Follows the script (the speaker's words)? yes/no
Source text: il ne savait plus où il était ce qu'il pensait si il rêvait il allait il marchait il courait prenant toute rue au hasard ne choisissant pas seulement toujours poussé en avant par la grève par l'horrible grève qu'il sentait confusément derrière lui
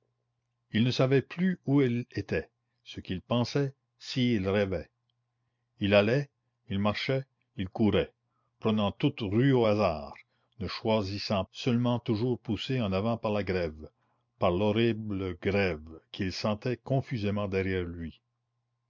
no